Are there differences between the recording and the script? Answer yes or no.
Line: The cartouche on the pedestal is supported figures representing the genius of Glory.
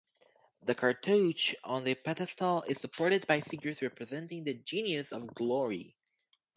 yes